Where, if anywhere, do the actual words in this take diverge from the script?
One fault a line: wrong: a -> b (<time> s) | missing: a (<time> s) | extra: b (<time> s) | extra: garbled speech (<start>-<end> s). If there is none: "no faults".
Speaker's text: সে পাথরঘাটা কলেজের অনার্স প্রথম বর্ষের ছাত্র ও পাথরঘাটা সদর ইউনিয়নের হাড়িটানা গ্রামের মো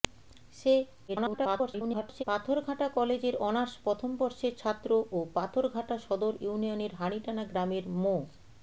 extra: garbled speech (1.1-2.2 s)